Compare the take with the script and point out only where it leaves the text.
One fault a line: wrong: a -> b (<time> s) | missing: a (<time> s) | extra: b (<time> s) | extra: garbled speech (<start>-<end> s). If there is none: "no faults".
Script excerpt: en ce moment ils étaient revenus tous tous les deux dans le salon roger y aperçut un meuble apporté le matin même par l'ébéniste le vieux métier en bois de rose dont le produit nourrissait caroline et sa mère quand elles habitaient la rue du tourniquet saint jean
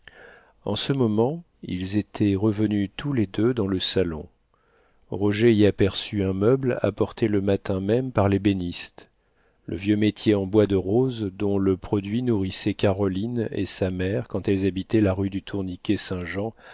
missing: tous (3.1 s)